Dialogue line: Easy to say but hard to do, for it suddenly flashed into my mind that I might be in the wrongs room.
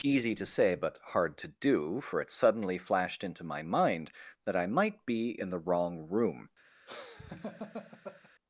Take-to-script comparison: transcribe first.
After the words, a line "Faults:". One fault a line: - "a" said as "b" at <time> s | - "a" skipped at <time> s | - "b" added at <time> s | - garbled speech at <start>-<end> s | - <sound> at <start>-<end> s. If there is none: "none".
Easy to say but hard to do, for it suddenly flashed into my mind that I might be in the wrong room.
Faults:
- "wrongs" said as "wrong" at 5.6 s
- laugh at 6.9-8.3 s